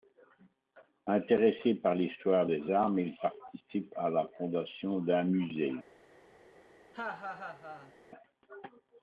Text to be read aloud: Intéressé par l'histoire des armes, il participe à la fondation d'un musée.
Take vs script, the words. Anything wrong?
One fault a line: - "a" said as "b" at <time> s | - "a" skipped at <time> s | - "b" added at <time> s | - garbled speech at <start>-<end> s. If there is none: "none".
none